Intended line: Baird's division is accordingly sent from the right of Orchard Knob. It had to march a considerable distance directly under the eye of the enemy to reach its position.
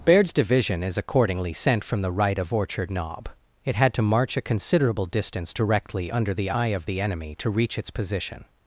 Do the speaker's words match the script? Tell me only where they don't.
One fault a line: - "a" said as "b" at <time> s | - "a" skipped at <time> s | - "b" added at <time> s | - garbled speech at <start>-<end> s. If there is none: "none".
none